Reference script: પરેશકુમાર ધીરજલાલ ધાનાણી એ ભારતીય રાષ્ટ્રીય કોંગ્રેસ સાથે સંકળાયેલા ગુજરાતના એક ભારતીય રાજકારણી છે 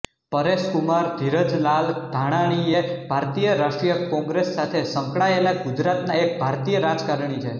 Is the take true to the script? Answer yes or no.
yes